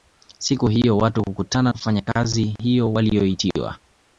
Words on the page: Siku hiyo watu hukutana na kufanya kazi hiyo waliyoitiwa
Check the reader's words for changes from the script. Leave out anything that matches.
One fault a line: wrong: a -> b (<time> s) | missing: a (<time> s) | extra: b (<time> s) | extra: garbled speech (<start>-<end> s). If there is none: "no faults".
missing: na (1.7 s)